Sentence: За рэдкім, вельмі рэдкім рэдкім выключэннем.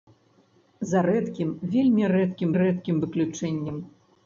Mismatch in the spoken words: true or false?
false